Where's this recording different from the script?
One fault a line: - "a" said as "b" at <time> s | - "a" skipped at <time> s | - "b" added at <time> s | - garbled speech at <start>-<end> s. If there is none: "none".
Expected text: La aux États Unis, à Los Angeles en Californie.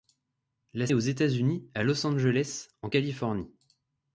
none